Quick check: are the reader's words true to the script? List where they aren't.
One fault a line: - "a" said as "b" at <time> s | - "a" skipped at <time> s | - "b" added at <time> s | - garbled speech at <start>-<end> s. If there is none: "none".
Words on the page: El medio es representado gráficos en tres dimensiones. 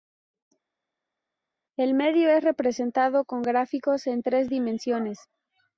- "con" added at 3.2 s